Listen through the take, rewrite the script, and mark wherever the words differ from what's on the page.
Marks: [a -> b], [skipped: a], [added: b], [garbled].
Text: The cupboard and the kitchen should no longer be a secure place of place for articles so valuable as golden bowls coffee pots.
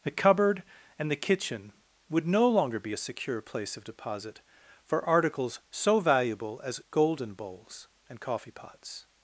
The cupboard and the kitchen [should -> would] no longer be a secure place of [place -> deposit] for articles so valuable as golden bowls [added: and] coffee pots.